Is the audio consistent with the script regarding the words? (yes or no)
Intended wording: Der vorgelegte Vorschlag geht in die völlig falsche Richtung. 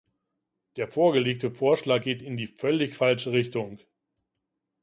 yes